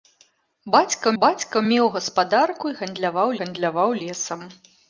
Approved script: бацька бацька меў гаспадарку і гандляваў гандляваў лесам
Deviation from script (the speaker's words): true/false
false